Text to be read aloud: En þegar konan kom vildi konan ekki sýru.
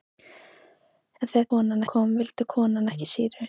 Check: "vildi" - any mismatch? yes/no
no